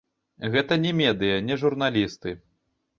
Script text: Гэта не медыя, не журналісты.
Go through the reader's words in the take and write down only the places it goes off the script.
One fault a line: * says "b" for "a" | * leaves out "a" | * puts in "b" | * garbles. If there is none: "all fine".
all fine